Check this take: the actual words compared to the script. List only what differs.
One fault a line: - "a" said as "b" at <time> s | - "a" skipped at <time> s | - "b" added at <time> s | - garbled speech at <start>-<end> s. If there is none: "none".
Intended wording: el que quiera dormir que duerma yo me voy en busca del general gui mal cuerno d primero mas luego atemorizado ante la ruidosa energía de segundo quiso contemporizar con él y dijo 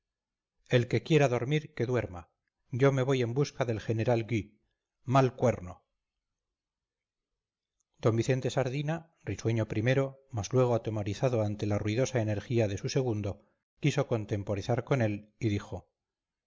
- "vicente sardina risueño" added at 8.2 s
- "su" added at 12.8 s